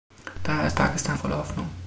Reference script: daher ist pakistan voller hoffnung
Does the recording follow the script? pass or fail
pass